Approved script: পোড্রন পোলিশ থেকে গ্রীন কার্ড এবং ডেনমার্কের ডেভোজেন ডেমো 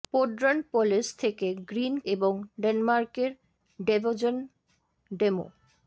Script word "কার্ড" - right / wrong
wrong